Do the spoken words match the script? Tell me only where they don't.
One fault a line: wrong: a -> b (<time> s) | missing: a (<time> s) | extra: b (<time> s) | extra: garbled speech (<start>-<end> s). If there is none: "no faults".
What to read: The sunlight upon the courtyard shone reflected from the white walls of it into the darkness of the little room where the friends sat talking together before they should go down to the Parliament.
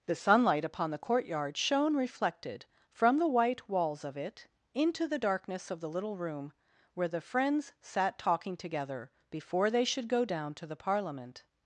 no faults